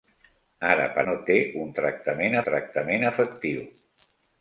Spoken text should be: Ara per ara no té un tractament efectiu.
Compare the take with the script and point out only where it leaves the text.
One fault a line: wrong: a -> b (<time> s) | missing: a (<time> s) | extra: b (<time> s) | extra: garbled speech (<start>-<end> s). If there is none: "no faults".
missing: ara (1.0 s)
extra: tractament (2.5 s)